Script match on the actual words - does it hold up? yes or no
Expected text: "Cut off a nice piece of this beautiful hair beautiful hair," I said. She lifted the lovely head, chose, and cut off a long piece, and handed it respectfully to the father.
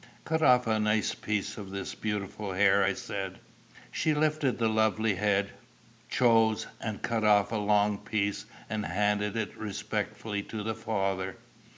no